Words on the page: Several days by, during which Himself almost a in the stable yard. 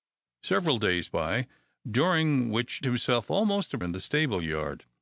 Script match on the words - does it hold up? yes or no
yes